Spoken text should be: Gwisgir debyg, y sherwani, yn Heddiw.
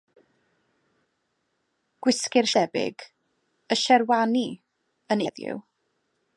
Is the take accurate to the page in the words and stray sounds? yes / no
yes